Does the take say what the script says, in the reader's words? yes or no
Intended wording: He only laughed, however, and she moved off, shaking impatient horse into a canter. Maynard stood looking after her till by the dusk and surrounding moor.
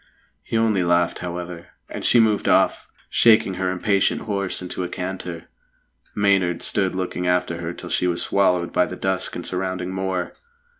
no